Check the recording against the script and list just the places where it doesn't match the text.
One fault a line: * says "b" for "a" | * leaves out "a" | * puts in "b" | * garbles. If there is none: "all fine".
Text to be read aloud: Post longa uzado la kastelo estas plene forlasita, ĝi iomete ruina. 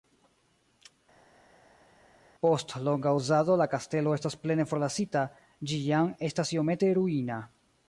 * puts in "jam estas"